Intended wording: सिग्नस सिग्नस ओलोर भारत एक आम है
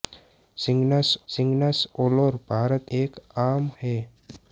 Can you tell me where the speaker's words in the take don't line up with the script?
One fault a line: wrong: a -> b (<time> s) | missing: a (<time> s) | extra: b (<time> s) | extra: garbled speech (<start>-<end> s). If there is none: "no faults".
no faults